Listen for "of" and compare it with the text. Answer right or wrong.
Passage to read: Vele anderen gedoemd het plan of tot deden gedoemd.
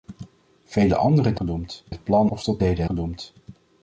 right